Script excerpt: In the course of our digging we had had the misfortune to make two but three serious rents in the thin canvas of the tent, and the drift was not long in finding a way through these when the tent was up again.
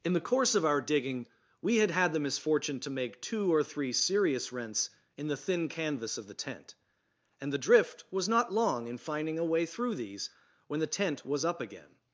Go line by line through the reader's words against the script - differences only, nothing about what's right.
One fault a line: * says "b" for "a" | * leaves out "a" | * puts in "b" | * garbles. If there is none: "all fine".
* says "or" for "but"